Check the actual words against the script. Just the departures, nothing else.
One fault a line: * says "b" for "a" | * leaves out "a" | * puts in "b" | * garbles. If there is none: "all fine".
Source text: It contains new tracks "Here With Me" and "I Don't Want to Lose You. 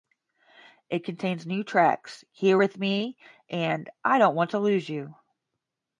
all fine